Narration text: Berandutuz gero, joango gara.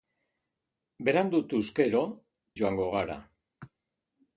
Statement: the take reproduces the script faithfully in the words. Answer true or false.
true